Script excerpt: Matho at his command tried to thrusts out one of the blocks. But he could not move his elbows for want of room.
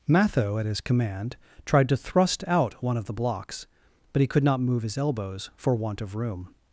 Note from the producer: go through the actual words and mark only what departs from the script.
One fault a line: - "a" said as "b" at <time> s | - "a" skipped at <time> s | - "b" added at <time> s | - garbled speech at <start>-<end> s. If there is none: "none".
- "thrusts" said as "thrust" at 2.0 s